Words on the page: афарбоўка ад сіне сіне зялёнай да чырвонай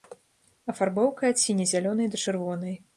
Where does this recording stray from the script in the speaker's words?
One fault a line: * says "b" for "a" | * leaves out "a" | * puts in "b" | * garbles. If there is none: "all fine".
* leaves out "сіне"